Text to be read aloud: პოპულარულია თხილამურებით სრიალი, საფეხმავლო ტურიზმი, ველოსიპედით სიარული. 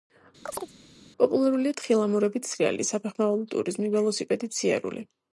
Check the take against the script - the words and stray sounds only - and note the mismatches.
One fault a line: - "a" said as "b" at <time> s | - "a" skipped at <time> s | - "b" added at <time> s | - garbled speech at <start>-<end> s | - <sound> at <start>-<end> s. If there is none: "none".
- chirp at 0.5-0.7 s